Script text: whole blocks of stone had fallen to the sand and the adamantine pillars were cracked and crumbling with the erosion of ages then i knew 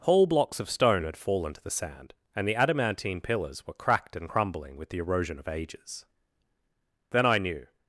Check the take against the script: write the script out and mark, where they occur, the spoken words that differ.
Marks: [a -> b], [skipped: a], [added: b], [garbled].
whole blocks of stone had fallen to the sand and the adamantine pillars were cracked and crumbling with the erosion of ages then i knew